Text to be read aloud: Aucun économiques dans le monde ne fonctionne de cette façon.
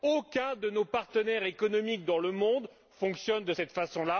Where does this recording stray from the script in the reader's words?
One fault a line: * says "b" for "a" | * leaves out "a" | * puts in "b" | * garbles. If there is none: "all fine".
* puts in "de nos partenaires"